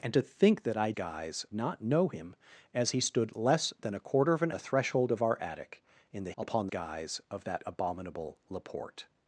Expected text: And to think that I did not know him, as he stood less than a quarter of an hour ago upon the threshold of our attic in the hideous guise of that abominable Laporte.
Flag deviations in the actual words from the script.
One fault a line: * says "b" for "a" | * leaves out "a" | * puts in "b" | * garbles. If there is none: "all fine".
* says "guise" for "did"
* leaves out "hour ago upon"
* says "upon" for "hideous"